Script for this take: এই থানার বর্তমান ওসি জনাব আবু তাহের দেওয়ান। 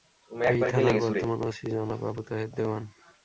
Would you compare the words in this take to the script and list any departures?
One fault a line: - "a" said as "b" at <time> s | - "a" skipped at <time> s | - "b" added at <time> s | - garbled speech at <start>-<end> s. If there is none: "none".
none